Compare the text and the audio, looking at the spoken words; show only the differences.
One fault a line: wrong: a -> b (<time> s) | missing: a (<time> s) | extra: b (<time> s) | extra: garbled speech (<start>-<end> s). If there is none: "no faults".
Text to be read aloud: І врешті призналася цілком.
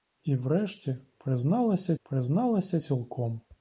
extra: призналася (2.0 s)